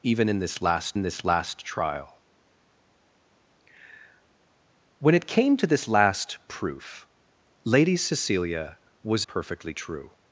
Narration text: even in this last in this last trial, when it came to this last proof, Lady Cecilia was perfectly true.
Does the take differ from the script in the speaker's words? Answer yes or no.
no